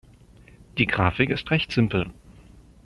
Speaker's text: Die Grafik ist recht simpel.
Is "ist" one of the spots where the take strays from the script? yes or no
no